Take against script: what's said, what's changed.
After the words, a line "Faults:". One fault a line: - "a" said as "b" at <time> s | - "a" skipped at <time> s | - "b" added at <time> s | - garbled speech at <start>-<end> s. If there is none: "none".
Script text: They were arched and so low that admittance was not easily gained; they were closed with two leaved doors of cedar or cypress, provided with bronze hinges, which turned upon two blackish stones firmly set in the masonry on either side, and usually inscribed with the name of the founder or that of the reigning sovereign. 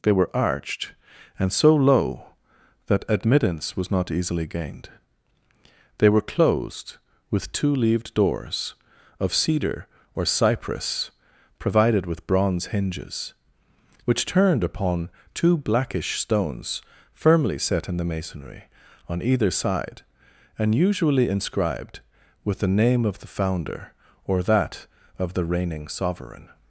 They were arched and so low that admittance was not easily gained; they were closed with two leaved doors of cedar or cypress, provided with bronze hinges, which turned upon two blackish stones firmly set in the masonry on either side, and usually inscribed with the name of the founder or that of the reigning sovereign.
Faults:
none